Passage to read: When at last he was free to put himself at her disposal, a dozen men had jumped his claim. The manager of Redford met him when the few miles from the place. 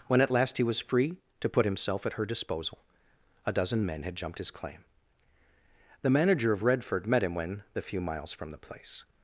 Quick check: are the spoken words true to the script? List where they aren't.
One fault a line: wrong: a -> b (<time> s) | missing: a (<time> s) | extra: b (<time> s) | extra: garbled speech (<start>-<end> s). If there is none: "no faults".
no faults